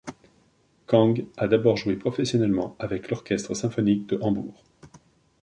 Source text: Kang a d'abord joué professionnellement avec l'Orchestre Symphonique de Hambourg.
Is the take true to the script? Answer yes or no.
yes